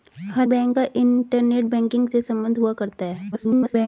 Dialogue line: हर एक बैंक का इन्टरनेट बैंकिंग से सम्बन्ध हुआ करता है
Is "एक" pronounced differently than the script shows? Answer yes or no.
yes